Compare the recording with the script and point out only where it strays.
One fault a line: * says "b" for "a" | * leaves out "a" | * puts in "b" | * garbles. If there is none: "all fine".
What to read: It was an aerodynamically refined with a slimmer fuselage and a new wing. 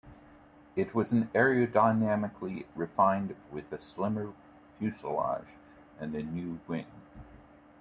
all fine